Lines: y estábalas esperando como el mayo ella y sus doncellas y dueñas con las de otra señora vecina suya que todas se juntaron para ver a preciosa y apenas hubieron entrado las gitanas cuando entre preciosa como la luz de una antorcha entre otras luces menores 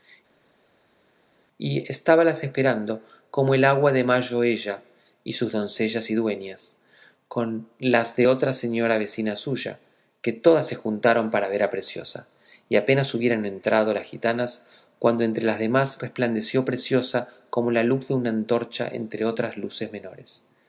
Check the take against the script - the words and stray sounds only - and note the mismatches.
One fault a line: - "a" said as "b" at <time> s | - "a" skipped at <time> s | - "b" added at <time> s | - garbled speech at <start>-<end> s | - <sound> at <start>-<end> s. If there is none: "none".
- "agua de" added at 3.6 s
- "las demás resplandeció" added at 15.4 s